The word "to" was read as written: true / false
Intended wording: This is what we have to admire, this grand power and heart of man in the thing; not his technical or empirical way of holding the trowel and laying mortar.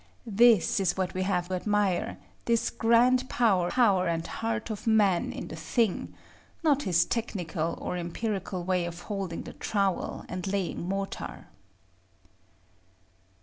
false